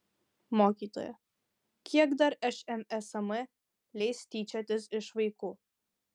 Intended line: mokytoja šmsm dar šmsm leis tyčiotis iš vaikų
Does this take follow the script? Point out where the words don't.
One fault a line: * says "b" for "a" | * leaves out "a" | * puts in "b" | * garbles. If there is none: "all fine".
* says "kiek" for "šmsm"